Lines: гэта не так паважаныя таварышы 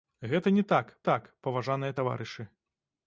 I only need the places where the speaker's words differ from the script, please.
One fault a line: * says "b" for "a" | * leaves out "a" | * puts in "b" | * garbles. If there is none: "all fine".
* puts in "так"